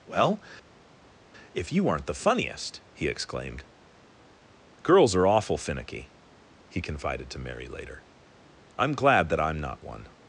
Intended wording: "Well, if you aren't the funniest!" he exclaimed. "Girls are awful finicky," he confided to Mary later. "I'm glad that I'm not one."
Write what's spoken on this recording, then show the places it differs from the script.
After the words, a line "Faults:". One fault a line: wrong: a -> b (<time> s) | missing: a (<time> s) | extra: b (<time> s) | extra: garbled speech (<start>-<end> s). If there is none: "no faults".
"Well, if you aren't the funniest!" he exclaimed. "Girls are awful finicky," he confided to Mary later. "I'm glad that I'm not one."
Faults:
no faults